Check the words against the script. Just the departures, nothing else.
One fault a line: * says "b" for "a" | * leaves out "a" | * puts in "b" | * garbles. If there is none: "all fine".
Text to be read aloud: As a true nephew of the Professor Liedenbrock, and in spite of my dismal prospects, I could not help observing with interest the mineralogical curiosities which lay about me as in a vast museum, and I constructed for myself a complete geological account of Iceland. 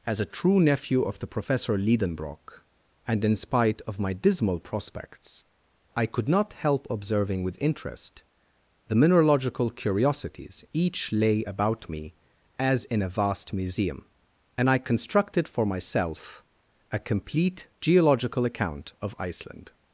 * says "each" for "which"